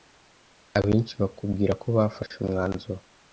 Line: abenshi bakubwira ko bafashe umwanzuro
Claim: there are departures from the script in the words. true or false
false